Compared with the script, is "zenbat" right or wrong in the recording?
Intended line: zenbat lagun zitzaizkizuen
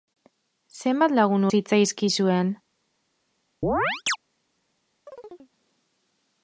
right